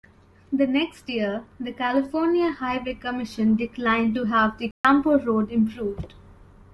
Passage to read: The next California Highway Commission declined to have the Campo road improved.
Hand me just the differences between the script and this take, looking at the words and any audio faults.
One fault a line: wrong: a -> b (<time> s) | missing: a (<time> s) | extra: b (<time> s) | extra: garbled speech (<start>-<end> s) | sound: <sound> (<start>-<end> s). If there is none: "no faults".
extra: year the (1.1 s)
sound: dropout (4.7-4.8 s)